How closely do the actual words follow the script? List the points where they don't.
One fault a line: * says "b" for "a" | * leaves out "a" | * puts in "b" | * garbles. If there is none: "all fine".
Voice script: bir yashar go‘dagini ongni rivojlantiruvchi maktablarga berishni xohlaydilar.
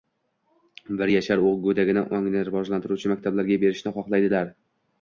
all fine